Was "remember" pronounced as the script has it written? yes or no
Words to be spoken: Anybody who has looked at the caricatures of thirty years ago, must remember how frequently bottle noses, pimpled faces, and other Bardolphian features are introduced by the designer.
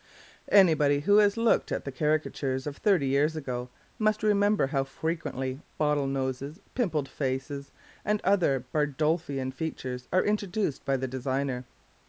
yes